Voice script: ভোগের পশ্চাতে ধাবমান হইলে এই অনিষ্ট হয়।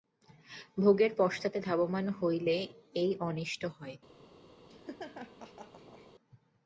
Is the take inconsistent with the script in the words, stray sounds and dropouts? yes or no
yes